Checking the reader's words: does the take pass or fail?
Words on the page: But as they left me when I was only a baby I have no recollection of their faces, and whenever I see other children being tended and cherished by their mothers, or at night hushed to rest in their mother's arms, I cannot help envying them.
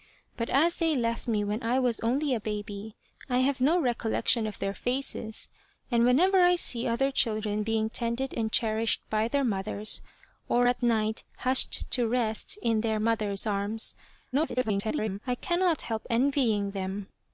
fail